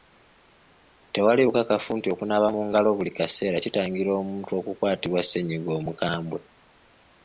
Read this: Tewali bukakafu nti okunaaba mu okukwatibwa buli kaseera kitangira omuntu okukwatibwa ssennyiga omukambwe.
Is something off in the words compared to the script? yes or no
yes